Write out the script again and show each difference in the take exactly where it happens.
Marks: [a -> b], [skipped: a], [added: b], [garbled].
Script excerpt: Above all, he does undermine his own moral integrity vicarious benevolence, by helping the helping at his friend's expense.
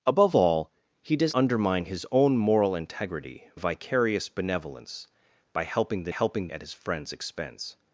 Above all, he does undermine his own moral integrity vicarious benevolence, by helping the helping at his friend's expense.